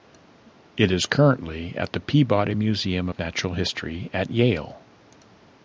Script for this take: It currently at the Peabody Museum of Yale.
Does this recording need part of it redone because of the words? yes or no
yes